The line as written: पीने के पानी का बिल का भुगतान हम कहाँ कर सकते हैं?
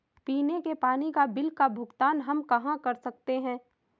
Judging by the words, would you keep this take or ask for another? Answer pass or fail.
pass